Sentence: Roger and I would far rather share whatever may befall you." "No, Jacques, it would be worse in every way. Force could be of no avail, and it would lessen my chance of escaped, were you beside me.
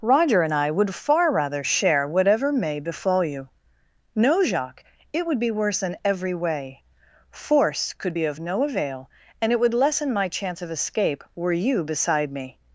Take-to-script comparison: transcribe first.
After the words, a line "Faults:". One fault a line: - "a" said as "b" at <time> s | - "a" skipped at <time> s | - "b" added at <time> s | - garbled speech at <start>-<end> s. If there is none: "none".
Roger and I would far rather share whatever may befall you." "No, Jacques, it would be worse in every way. Force could be of no avail, and it would lessen my chance of escape, were you beside me.
Faults:
- "escaped" said as "escape" at 10.7 s